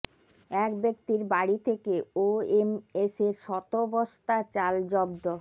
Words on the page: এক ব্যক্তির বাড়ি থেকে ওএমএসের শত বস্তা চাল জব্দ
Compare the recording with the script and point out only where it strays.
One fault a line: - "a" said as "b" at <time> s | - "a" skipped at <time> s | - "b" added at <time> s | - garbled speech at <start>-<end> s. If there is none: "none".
none